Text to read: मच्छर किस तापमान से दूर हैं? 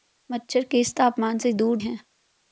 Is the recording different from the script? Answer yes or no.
no